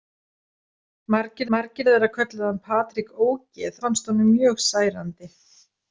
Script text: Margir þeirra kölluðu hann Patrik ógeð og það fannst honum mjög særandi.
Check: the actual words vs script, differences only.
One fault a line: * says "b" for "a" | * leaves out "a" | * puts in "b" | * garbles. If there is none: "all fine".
* puts in "margir"
* leaves out "og það"